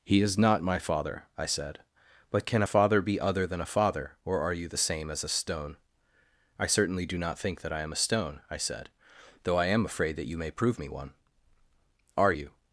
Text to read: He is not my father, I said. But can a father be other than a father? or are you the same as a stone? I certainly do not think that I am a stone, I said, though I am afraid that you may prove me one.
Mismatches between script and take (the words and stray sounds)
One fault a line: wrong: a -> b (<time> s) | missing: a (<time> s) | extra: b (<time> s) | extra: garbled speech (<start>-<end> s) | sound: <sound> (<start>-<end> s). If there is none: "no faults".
extra: Are you (12.2 s)